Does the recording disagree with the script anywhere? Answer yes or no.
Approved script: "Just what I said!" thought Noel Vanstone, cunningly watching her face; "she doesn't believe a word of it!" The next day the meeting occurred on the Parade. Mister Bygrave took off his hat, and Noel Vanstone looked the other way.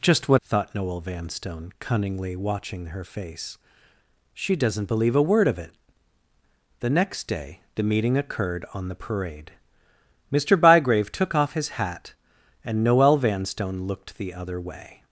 yes